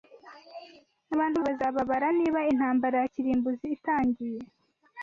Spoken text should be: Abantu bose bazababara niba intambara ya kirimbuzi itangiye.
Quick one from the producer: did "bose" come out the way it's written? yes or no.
no